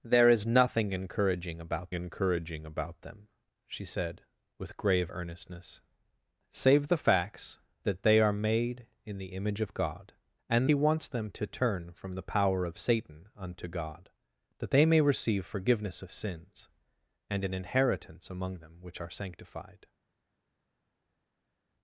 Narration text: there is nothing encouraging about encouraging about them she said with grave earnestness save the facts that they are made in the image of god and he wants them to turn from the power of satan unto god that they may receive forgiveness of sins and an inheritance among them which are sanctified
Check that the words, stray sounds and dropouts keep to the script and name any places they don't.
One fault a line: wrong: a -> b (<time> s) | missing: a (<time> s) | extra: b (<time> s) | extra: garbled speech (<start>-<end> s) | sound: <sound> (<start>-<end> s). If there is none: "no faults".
no faults